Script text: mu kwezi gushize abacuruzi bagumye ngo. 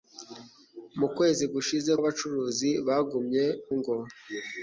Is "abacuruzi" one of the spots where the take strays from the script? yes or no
no